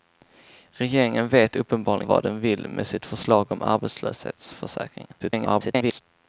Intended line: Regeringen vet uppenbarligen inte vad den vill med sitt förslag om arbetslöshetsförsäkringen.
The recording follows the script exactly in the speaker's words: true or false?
false